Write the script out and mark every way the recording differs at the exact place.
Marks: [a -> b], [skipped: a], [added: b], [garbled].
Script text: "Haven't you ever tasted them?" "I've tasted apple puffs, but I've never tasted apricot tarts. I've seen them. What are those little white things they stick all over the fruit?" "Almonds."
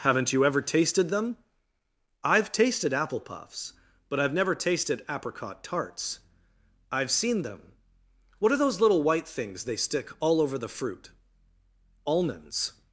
"Haven't you ever tasted them?" "I've tasted apple puffs, but I've never tasted apricot tarts. I've seen them. What are those little white things they stick all over the fruit?" "Almonds."